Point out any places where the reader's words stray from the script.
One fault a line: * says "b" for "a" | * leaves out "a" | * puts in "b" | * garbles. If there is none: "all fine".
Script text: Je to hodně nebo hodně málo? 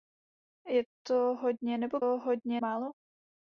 all fine